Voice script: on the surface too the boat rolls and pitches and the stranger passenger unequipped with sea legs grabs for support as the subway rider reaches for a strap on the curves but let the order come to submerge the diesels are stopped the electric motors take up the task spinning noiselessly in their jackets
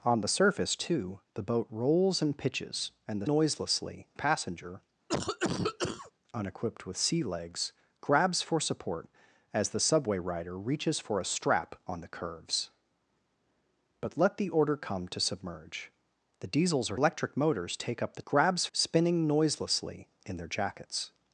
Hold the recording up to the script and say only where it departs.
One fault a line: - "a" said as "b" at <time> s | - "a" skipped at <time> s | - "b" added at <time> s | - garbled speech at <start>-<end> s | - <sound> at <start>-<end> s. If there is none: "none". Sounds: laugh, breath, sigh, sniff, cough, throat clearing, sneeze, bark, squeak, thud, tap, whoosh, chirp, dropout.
- "stranger" said as "noiselessly" at 3.3 s
- cough at 5.1-6.1 s
- "stopped the" skipped at 17.0 s
- "task" said as "grabs" at 18.3 s